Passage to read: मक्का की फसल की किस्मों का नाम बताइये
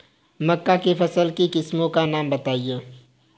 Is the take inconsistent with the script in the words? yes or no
no